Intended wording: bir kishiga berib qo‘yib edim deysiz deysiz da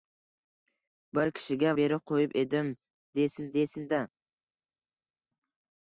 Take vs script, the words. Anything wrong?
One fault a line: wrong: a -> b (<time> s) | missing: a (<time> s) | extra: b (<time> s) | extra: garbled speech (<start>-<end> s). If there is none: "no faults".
no faults